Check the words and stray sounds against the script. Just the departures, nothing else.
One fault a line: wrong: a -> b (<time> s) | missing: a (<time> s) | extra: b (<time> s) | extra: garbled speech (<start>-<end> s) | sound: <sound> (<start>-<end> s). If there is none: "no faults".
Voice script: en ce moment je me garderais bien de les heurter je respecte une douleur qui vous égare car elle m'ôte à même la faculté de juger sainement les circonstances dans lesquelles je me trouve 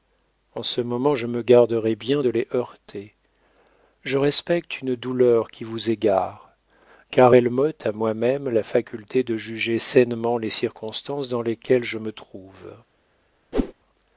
extra: moi (7.9 s)
sound: whoosh (13.5-13.7 s)